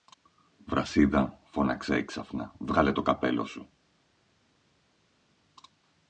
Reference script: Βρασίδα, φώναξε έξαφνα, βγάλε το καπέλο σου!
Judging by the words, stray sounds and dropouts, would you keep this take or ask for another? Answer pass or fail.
pass